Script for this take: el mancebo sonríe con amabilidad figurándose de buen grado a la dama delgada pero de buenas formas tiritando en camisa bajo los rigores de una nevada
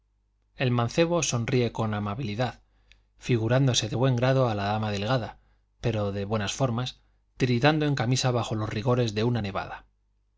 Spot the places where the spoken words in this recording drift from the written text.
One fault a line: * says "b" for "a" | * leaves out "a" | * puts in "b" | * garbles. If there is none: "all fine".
all fine